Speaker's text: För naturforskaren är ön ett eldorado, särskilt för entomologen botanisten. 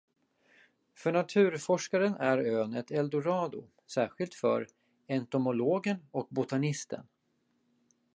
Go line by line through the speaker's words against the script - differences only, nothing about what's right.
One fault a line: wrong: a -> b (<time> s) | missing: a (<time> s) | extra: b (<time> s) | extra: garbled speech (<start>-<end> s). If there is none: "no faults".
extra: och (6.1 s)